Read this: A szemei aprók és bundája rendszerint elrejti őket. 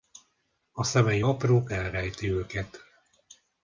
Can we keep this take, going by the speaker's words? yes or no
no